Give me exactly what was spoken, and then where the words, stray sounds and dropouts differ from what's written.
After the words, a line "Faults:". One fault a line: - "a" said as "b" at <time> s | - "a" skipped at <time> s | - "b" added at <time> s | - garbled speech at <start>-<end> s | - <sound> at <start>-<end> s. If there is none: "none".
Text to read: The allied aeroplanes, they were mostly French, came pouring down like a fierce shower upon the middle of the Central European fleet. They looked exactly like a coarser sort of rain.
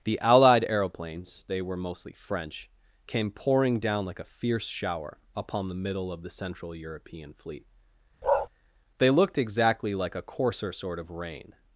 The allied aeroplanes, they were mostly French, came pouring down like a fierce shower upon the middle of the Central European fleet. They looked exactly like a coarser sort of rain.
Faults:
- bark at 8.2-8.5 s